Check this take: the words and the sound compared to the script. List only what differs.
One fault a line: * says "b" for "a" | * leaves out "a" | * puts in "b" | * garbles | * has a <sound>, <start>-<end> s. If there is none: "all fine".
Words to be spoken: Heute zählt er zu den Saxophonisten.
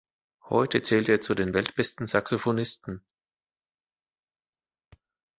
* puts in "weltbesten"